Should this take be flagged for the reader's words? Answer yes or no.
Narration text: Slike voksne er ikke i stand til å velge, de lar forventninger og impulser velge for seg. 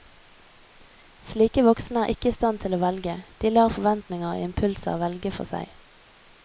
no